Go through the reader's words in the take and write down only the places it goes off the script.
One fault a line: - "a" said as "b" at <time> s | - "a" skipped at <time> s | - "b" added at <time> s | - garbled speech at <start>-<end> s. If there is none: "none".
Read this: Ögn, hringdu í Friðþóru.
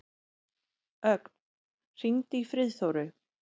none